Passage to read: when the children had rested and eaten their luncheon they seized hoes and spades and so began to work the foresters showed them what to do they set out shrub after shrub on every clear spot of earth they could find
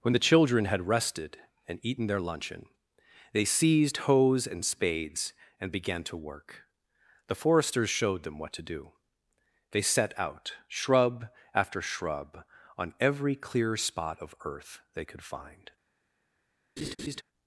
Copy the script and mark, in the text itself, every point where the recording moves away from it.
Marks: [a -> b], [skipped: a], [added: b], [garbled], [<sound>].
when the children had rested and eaten their luncheon they seized hoes and spades and [skipped: so] began to work the foresters showed them what to do they set out shrub after shrub on every clear spot of earth they could find [laugh]